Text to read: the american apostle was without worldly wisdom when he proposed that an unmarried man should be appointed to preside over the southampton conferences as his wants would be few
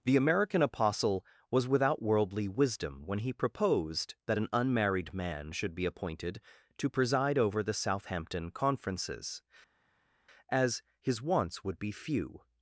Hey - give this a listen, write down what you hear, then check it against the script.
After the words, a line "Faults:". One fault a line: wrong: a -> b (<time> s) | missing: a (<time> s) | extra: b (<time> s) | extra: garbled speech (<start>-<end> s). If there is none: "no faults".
the american apostle was without worldly wisdom when he proposed that an unmarried man should be appointed to preside over the southampton conferences as his wants would be few
Faults:
no faults